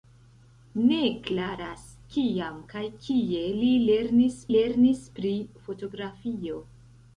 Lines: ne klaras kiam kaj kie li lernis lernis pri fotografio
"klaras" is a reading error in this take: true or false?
false